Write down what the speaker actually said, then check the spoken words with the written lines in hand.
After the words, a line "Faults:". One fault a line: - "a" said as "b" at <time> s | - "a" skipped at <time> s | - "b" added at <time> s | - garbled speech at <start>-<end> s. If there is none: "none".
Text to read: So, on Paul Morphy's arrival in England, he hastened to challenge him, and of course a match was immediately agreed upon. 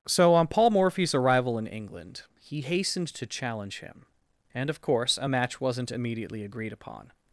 So, on Paul Morphy's arrival in England, he hastened to challenge him, and of course a match wasn't immediately agreed upon.
Faults:
- "was" said as "wasn't" at 5.6 s